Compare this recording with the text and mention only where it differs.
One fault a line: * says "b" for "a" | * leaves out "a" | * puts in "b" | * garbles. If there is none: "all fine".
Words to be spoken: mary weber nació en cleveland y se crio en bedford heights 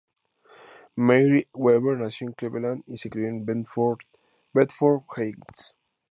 all fine